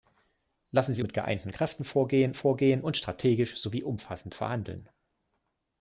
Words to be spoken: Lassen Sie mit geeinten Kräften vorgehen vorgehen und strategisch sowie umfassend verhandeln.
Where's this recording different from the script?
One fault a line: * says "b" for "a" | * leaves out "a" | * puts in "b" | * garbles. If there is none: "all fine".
all fine